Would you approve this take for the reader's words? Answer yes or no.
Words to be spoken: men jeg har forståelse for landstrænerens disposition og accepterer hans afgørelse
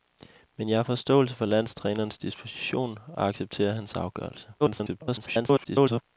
no